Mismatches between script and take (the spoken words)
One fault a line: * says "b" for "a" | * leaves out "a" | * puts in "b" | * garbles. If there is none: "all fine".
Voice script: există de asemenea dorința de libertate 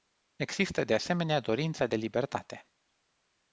all fine